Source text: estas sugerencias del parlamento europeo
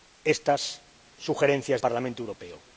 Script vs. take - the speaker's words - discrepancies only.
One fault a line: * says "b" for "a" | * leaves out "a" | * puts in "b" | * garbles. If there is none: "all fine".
* leaves out "del"